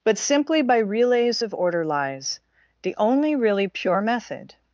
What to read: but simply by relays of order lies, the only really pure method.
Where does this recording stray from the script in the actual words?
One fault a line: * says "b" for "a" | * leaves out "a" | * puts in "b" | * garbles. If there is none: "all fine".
all fine